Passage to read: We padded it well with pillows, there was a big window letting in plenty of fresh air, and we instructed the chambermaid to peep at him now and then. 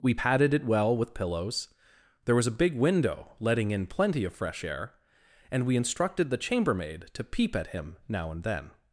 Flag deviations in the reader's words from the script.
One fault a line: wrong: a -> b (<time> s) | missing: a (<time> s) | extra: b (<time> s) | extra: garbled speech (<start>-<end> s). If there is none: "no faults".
no faults